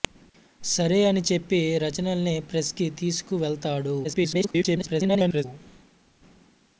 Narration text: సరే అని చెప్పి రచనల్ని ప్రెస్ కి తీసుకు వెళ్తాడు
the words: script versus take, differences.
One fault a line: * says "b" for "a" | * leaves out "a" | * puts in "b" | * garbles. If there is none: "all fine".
* garbles